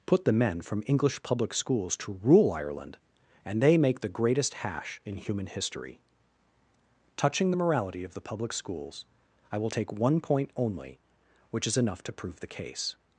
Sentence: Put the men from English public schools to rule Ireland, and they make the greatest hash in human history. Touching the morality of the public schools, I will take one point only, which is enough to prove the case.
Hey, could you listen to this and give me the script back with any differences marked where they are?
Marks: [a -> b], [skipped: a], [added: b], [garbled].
Put the men from English public schools to rule Ireland, and they make the greatest hash in human history. Touching the morality of the public schools, I will take one point only, which is enough to prove the case.